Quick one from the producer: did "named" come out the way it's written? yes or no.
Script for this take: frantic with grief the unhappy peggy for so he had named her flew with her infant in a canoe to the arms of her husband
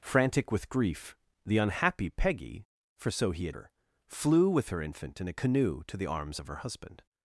no